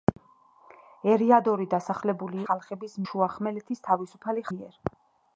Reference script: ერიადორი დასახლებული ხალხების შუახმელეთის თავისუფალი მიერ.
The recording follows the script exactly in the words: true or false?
true